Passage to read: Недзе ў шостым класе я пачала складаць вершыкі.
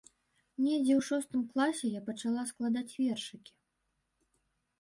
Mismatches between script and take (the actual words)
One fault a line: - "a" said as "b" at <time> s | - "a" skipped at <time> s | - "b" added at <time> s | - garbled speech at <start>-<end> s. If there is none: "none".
none